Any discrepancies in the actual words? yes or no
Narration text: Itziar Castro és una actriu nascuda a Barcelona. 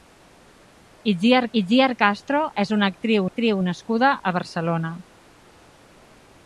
yes